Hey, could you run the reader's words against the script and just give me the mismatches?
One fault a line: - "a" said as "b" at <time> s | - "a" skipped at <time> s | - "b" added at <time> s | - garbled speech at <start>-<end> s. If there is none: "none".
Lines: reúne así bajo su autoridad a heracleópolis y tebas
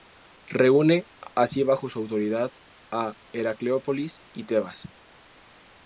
none